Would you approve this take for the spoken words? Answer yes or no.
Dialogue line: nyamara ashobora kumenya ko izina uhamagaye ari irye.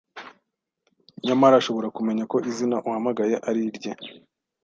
yes